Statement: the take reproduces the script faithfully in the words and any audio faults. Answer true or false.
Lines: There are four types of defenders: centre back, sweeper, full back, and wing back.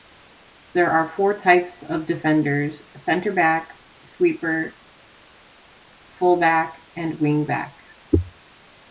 true